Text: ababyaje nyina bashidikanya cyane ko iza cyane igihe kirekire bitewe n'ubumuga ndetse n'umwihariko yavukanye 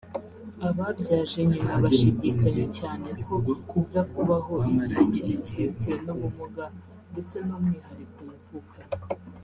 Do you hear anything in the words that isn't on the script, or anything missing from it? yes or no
yes